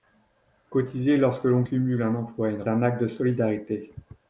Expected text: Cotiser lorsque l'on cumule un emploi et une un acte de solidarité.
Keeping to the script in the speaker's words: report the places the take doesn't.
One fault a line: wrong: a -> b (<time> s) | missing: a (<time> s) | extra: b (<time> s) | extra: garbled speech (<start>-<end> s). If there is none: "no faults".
no faults